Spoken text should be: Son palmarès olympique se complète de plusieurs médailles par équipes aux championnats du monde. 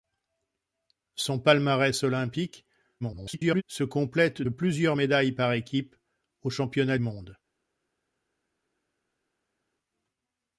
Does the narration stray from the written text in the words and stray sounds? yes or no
yes